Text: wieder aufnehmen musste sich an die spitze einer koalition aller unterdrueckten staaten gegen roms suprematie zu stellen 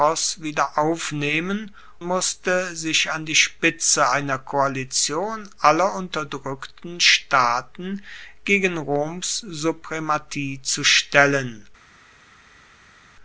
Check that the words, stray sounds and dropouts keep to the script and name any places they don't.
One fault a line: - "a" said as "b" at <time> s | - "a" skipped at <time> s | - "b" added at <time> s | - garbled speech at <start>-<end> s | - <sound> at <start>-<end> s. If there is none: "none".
none